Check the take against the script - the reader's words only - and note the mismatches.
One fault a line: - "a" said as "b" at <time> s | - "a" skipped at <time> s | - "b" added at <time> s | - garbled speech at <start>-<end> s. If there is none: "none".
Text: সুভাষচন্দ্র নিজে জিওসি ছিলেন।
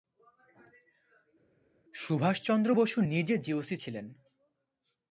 - "বসু" added at 2.7 s